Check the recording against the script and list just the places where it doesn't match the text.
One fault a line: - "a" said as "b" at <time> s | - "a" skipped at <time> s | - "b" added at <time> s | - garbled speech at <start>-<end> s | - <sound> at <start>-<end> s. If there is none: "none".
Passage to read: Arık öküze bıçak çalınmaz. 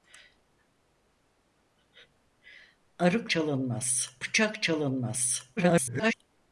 - "öküze" said as "çalınmaz" at 3.3 s
- garbled speech at 5.6-6.1 s